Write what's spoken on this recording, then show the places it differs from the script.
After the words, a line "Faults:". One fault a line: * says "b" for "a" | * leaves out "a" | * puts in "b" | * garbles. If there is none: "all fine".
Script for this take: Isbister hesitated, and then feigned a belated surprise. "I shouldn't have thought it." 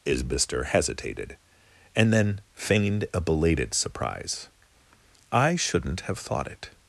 Isbister hesitated, and then feigned a belated surprise. "I shouldn't have thought it."
Faults:
all fine